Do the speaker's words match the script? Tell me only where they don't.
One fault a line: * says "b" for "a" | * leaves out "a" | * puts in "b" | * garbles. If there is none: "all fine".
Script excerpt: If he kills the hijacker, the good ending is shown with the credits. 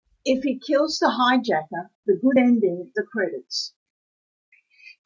* leaves out "is shown with"